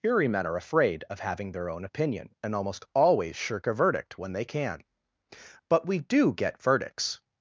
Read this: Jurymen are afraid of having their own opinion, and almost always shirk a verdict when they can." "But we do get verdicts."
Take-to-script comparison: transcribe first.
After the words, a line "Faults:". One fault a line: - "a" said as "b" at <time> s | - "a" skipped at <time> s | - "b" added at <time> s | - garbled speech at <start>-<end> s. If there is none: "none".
Jurymen are afraid of having their own opinion, and almost always shirk a verdict when they can." "But we do get verdicts."
Faults:
none